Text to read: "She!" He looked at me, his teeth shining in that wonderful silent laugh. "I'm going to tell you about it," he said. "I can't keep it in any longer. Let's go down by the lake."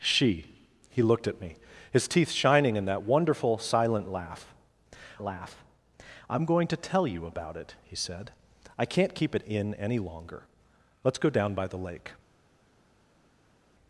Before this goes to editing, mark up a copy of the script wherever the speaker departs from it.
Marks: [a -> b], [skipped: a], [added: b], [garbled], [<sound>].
"She!" He looked at me, his teeth shining in that wonderful silent laugh. [added: laugh] "I'm going to tell you about it," he said. "I can't keep it in any longer. Let's go down by the lake."